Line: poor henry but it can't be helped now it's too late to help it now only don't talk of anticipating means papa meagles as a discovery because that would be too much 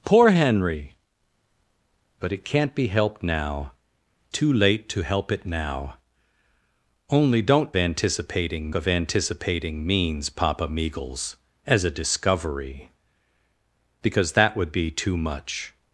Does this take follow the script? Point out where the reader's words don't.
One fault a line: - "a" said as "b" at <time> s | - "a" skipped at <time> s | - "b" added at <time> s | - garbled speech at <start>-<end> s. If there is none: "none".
- "it's" skipped at 3.7 s
- "talk" said as "anticipating" at 7.7 s